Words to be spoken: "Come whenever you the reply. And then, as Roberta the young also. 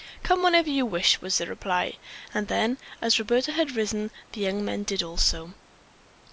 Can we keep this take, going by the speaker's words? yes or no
no